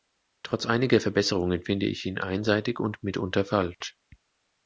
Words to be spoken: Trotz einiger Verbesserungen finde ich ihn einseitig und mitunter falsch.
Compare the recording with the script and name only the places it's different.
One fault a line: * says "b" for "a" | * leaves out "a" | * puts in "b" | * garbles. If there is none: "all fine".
all fine